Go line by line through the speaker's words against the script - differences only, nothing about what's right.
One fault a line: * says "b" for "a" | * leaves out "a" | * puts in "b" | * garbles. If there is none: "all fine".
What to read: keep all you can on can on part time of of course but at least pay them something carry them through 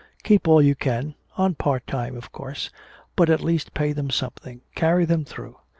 * leaves out "can on"
* leaves out "of"